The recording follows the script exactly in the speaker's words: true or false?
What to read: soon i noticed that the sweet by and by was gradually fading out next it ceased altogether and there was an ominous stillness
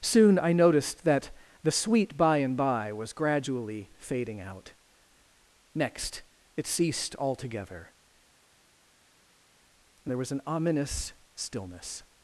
true